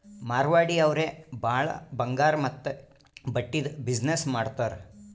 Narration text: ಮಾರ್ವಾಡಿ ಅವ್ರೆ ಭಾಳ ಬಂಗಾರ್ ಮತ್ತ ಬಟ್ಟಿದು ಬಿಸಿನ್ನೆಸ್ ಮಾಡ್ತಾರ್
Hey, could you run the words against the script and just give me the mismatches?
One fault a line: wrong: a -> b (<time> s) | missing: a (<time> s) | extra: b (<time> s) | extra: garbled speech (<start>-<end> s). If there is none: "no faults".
no faults